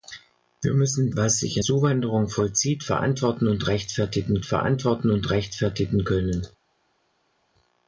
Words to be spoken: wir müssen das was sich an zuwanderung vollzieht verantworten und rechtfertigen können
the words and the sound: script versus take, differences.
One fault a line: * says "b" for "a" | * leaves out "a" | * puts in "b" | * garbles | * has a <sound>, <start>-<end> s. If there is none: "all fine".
* leaves out "das"
* leaves out "an"
* puts in "verantworten und rechtfertigen"